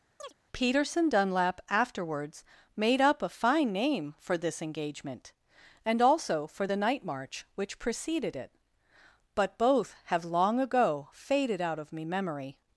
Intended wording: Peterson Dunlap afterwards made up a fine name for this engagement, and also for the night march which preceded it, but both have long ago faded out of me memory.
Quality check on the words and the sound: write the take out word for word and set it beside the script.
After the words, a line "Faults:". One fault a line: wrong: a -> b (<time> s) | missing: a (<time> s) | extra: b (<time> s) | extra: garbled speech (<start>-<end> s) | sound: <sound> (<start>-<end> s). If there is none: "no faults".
Peterson Dunlap afterwards made up a fine name for this engagement, and also for the night march which preceded it, but both have long ago faded out of me memory.
Faults:
sound: chirp (0.2-0.3 s)